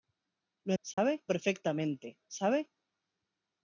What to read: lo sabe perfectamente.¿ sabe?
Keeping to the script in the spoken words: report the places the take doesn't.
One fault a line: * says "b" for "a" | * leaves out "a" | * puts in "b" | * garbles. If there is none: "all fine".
all fine